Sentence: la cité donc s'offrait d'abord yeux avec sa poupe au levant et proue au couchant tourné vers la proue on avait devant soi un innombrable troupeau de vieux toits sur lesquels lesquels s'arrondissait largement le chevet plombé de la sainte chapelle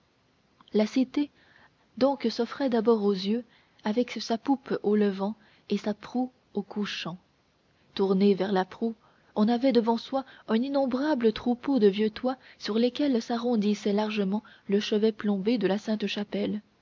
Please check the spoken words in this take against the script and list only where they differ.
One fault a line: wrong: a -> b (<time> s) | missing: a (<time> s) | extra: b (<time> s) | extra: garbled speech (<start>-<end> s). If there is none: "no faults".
extra: aux (3.0 s)
extra: sa (5.8 s)
missing: lesquels (13.2 s)